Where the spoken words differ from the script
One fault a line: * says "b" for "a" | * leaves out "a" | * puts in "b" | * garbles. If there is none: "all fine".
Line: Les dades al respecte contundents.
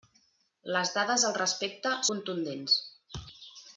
all fine